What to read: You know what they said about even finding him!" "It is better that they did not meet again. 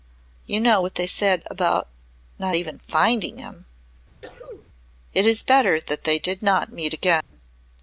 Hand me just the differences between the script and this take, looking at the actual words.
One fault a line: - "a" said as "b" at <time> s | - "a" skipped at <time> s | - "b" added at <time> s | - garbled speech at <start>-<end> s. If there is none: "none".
- "not" added at 2.4 s